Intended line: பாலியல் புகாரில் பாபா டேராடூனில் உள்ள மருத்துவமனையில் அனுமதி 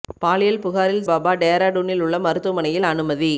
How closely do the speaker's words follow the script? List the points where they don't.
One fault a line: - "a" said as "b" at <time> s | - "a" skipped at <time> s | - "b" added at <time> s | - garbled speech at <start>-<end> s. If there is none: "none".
none